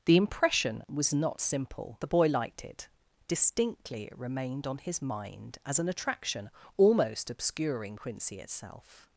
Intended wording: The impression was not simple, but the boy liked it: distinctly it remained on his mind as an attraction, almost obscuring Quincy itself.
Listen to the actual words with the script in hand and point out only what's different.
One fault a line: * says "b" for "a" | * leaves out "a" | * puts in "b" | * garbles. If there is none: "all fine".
* leaves out "but"